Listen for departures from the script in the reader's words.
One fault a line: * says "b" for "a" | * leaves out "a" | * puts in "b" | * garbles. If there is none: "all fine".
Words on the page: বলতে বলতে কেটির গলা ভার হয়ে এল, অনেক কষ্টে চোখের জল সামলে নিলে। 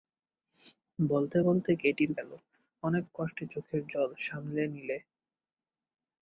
* leaves out "গলা ভার হয়ে"